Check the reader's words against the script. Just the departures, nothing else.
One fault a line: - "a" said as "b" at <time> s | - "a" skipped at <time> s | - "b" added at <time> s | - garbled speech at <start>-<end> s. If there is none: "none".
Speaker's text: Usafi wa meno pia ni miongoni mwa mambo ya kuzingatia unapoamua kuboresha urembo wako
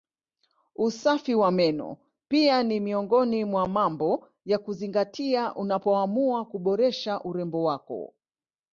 none